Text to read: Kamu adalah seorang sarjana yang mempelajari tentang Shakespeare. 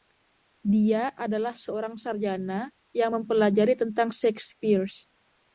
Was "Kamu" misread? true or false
true